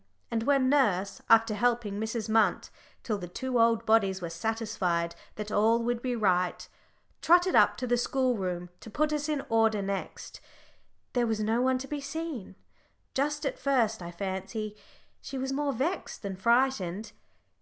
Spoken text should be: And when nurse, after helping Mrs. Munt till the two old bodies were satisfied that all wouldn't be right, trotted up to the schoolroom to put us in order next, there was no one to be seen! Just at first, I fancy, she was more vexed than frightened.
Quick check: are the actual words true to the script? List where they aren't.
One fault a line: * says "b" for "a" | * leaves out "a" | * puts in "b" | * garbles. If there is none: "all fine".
* says "would" for "wouldn't"